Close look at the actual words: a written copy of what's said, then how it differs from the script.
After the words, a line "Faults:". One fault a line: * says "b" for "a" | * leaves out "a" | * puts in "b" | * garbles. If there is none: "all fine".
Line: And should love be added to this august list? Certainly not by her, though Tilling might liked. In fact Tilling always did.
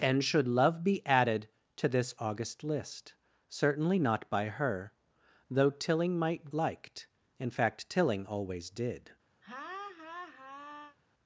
And should love be added to this august list? Certainly not by her, though Tilling might liked. In fact Tilling always did.
Faults:
all fine